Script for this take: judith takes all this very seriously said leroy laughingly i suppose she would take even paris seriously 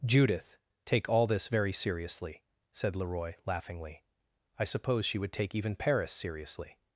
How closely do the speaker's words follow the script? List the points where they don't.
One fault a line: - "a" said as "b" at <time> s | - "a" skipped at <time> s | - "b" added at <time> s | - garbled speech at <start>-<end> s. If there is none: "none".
- "takes" said as "take" at 0.8 s